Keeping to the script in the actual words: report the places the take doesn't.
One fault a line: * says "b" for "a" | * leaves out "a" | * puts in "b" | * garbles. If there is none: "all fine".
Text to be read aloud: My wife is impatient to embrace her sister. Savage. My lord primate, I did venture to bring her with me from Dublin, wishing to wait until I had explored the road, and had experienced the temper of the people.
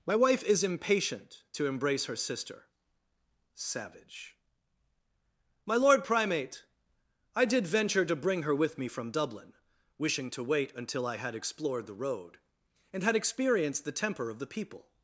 all fine